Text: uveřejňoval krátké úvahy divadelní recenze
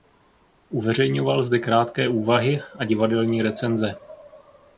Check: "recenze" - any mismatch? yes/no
no